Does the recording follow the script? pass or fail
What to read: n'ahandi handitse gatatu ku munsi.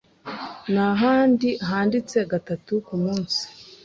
pass